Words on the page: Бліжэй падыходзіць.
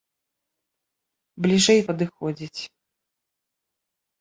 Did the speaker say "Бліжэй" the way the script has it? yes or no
yes